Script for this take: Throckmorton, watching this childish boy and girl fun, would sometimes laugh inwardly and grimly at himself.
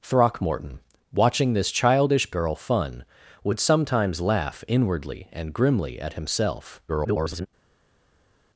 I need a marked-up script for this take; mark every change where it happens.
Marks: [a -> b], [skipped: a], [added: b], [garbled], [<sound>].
Throckmorton, watching this childish [skipped: boy and] girl fun, would sometimes laugh inwardly and grimly at himself. [garbled]